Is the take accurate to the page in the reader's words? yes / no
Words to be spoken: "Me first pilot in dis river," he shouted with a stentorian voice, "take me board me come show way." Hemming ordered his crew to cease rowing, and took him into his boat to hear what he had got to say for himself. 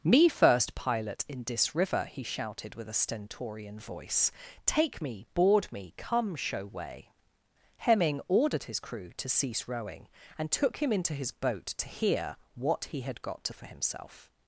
no